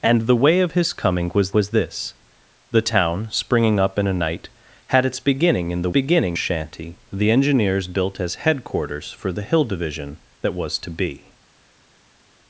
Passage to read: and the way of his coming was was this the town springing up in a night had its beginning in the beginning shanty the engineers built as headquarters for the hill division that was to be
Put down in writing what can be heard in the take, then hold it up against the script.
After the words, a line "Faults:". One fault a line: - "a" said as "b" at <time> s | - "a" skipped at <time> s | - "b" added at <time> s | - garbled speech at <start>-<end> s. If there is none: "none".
and the way of his coming was was this the town springing up in a night had its beginning in the beginning shanty the engineers built as headquarters for the hill division that was to be
Faults:
none